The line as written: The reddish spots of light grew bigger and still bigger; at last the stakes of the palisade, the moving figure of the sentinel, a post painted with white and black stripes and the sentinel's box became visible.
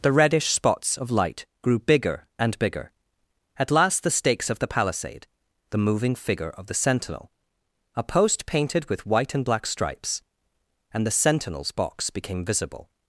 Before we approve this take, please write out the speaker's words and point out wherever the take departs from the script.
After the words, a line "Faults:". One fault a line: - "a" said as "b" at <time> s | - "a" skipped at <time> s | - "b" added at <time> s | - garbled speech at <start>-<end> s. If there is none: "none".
The reddish spots of light grew bigger and bigger; at last the stakes of the palisade, the moving figure of the sentinel, a post painted with white and black stripes and the sentinel's box became visible.
Faults:
- "still" skipped at 2.6 s